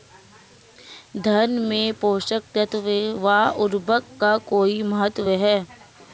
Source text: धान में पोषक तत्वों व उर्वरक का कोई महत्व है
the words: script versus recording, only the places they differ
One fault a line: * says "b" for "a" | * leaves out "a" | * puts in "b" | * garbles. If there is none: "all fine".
all fine